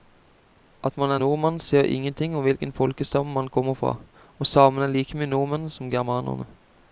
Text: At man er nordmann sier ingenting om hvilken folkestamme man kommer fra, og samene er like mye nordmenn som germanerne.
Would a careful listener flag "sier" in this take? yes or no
no